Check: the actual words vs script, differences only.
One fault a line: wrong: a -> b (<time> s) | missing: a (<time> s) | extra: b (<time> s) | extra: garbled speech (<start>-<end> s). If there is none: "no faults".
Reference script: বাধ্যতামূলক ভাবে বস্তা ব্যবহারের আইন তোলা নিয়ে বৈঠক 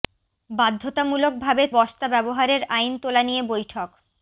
no faults